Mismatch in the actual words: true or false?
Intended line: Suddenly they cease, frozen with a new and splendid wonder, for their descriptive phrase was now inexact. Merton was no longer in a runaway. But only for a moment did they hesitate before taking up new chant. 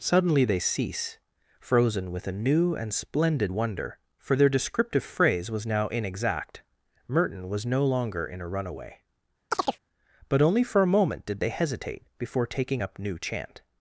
false